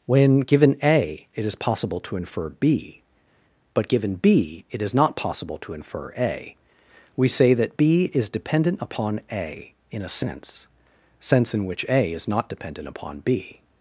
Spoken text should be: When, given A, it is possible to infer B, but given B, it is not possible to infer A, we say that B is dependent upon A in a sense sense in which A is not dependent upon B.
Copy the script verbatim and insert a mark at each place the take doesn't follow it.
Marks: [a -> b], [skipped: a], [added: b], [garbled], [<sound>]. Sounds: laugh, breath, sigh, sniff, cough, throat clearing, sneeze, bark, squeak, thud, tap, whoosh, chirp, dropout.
When, given A, it is possible to infer B, but given B, it is not possible to infer A, we say that B is dependent upon A in a sense sense in which A is not dependent upon B.